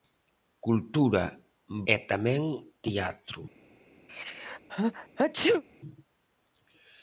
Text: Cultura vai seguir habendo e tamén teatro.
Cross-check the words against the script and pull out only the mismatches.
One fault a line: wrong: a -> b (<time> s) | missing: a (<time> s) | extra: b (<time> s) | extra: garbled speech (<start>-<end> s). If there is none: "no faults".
missing: vai seguir habendo (1.2 s)